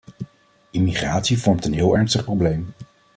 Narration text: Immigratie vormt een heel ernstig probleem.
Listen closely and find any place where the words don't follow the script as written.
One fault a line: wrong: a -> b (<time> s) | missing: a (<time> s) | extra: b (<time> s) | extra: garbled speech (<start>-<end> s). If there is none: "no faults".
no faults